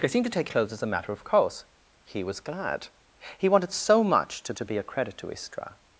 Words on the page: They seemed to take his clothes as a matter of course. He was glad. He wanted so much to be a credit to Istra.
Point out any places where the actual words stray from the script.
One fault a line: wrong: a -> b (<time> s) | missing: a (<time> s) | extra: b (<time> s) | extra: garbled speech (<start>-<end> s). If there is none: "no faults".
missing: his (0.5 s)
extra: to (4.5 s)